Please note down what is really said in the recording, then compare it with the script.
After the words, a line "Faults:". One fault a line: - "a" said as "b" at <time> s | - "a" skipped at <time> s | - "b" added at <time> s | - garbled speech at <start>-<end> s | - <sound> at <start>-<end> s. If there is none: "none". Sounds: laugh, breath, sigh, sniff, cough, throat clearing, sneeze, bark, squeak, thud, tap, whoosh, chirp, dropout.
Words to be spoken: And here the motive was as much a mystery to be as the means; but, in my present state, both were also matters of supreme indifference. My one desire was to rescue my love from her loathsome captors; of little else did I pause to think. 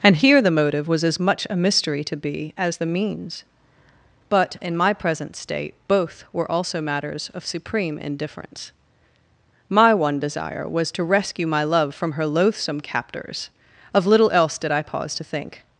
And here the motive was as much a mystery to be as the means; but, in my present state, both were also matters of supreme indifference. My one desire was to rescue my love from her loathsome captors; of little else did I pause to think.
Faults:
none